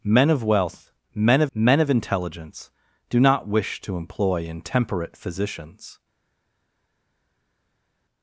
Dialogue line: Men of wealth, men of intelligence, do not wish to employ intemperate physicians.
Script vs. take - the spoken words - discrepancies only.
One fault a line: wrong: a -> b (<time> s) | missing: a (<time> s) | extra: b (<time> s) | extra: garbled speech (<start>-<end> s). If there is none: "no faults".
extra: men of (1.5 s)